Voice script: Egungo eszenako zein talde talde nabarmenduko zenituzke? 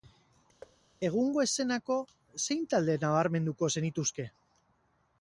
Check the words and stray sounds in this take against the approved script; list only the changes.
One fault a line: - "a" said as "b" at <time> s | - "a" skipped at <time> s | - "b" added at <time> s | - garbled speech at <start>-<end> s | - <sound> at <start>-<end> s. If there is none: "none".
- thud at 0.6-0.8 s
- "talde" skipped at 3.0 s